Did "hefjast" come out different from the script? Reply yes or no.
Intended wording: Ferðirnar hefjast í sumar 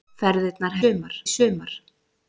yes